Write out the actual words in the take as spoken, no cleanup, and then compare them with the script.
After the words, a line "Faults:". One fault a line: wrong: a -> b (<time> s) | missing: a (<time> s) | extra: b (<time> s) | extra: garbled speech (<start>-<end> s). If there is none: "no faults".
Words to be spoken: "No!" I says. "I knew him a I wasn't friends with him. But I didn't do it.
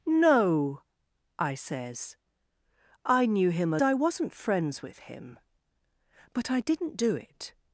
"No!" I says. "I knew him a I wasn't friends with him. But I didn't do it.
Faults:
no faults